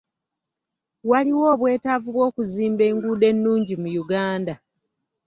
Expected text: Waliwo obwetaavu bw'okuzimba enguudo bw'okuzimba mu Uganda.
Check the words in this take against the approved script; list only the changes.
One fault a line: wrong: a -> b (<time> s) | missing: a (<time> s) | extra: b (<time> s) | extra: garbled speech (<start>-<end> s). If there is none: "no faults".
wrong: bw'okuzimba -> ennungi (3.3 s)